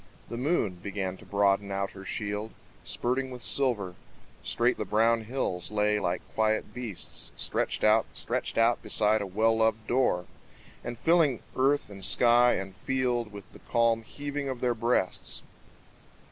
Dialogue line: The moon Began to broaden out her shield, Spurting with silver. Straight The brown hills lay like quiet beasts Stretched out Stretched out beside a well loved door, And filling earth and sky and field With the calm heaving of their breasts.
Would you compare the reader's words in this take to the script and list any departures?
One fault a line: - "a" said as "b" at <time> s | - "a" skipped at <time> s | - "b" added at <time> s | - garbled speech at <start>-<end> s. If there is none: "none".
none